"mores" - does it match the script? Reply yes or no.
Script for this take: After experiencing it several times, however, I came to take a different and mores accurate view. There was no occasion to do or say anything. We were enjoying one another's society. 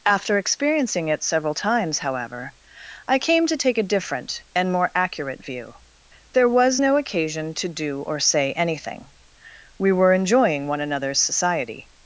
no